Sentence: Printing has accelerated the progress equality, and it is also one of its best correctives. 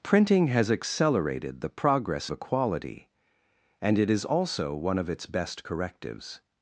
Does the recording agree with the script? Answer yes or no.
yes